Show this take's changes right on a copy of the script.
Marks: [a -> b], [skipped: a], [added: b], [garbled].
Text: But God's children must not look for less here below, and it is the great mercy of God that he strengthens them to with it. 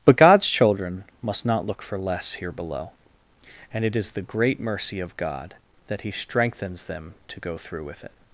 But God's children must not look for less here below, and it is the great mercy of God that he strengthens them to [added: go through] with it.